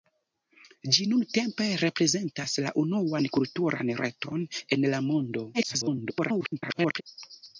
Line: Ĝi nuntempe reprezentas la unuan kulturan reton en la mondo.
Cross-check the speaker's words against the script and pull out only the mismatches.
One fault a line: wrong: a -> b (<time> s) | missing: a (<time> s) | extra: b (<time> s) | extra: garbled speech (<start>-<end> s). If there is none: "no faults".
extra: garbled speech (5.5-7.0 s)